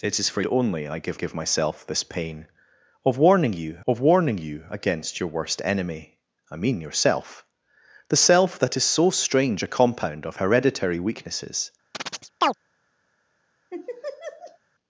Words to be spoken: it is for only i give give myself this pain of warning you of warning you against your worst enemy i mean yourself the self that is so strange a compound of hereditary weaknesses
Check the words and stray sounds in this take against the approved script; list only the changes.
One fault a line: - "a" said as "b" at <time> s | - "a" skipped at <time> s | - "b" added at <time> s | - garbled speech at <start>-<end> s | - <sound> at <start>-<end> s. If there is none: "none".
- chirp at 11.9-12.5 s
- laugh at 13.7-14.6 s